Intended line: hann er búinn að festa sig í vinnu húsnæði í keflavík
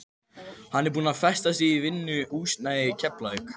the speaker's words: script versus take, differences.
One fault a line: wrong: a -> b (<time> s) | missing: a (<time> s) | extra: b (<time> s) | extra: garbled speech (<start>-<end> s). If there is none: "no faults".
no faults